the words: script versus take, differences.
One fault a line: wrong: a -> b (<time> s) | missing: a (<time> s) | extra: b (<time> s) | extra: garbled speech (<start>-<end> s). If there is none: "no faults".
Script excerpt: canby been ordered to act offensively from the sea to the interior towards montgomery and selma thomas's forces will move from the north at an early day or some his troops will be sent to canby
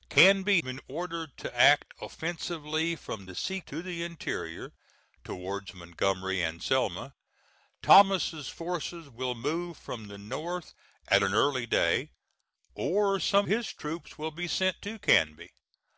no faults